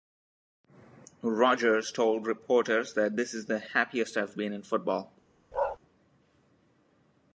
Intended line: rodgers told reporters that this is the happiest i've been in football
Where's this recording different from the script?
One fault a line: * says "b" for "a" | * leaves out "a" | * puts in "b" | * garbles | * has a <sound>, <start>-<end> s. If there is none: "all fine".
* has a bark, 5.5-5.8 s